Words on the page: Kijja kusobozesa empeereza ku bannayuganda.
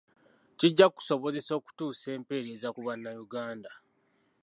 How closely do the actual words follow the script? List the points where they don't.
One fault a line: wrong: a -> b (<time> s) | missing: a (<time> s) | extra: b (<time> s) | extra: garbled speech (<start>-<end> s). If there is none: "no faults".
extra: okutuusa (1.6 s)